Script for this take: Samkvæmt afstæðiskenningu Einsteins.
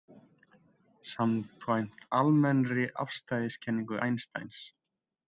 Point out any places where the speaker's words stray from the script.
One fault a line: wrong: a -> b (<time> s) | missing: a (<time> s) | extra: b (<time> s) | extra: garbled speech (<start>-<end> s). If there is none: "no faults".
extra: almennri (2.2 s)